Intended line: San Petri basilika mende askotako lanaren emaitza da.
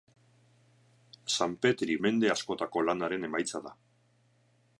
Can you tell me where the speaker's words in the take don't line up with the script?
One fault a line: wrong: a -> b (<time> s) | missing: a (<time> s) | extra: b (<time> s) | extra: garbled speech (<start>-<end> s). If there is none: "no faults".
missing: basilika (2.0 s)